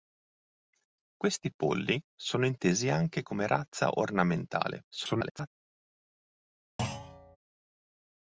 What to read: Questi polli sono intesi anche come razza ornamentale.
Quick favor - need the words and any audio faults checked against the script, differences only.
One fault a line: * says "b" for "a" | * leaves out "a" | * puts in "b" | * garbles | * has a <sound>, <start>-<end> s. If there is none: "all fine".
* garbles
* has a thud, 6.8-7.4 s